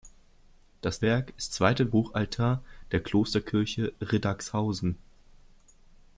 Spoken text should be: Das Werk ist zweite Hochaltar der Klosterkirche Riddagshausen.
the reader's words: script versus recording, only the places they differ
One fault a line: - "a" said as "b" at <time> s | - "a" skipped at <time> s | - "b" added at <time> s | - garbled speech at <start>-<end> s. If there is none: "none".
none